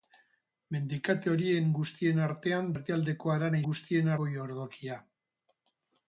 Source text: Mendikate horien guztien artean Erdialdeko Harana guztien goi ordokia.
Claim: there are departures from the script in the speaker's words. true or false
false